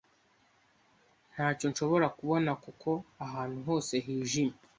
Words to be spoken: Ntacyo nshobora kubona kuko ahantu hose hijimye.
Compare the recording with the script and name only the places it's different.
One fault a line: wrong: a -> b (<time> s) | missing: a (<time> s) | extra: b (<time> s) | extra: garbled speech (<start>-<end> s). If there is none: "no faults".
no faults